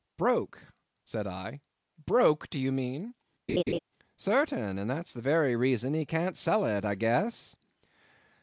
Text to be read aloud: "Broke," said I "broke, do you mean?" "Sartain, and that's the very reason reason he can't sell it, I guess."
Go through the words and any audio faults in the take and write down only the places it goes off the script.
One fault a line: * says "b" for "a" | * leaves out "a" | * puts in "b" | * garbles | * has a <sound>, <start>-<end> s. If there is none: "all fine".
* has a laugh, 3.5-3.8 s
* leaves out "reason"